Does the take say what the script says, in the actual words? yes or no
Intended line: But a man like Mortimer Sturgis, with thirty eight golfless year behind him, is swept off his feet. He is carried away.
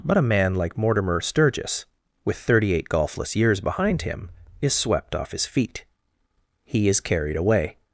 no